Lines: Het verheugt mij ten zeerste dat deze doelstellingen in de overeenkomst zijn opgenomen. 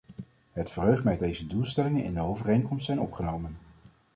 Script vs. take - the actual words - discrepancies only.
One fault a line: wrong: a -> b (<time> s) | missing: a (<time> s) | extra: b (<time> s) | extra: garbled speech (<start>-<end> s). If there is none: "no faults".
missing: ten zeerste dat (1.2 s)